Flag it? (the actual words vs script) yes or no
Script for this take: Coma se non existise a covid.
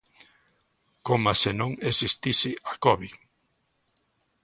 no